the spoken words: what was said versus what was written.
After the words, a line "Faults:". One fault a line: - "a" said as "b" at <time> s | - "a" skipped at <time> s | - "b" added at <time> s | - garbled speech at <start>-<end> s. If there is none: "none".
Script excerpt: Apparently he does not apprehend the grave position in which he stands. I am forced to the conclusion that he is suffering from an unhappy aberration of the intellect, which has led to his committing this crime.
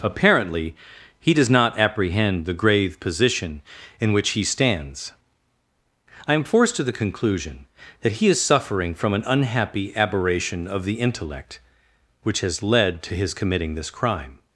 Apparently he does not apprehend the grave position in which he stands. I am forced to the conclusion that he is suffering from an unhappy aberration of the intellect, which has led to his committing this crime.
Faults:
none